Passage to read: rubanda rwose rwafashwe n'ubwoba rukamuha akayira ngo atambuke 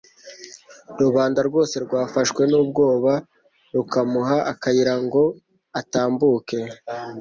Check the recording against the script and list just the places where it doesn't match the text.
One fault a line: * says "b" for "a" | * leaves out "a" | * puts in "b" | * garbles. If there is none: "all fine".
all fine